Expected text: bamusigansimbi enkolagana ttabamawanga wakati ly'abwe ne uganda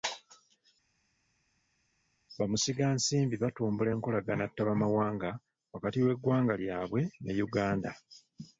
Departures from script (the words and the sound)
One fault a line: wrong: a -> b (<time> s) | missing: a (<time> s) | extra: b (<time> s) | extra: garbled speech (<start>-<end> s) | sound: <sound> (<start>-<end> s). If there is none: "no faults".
extra: batumbula (3.4 s)
extra: w'eggwanga (6.0 s)